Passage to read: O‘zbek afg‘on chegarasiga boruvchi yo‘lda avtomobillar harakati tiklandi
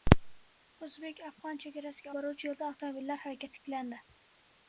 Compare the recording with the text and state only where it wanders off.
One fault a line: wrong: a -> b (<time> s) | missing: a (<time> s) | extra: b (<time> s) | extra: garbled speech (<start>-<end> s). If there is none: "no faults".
no faults